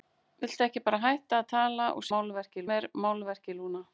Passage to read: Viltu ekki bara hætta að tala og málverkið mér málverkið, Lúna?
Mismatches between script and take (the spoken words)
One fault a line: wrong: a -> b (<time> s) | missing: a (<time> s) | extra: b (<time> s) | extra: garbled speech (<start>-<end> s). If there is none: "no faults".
no faults